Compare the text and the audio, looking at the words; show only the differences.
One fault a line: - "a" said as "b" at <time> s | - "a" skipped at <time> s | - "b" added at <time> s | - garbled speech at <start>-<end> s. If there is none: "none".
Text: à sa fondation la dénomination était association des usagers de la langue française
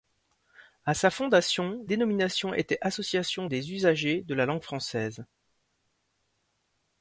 - "la" skipped at 1.9 s